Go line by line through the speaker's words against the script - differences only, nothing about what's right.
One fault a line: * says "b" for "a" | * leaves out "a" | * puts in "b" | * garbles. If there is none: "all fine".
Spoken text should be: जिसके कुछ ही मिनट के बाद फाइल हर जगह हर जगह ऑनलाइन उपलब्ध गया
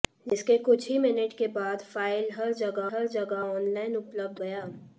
all fine